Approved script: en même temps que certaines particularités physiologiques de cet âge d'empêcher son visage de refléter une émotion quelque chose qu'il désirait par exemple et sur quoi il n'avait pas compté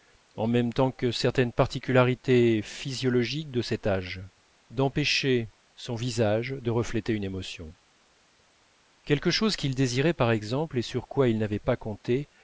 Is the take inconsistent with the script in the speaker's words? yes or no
no